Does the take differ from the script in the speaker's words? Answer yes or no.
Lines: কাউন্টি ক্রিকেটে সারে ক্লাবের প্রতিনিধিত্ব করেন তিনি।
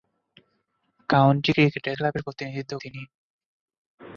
yes